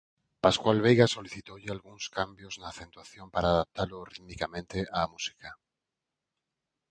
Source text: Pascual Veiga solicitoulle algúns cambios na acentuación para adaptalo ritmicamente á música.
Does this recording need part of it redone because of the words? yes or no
no